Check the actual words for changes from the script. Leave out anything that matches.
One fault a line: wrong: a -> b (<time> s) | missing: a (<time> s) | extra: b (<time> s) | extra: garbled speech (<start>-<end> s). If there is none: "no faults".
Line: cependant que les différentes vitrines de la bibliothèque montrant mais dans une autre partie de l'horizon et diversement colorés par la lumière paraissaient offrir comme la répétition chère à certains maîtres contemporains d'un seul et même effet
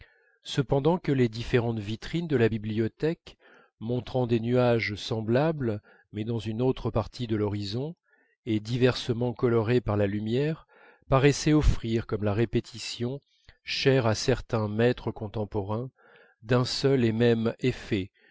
extra: des nuages semblables (4.3 s)